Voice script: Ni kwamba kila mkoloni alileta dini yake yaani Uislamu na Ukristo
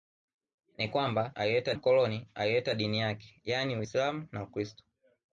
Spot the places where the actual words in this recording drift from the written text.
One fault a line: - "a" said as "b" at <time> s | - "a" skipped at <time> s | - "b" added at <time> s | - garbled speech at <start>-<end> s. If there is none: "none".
- "kila" said as "alileta" at 1.3 s